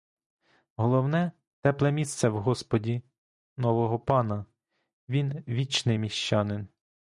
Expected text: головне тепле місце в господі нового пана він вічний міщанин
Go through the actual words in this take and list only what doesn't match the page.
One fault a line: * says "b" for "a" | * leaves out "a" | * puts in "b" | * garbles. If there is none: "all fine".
all fine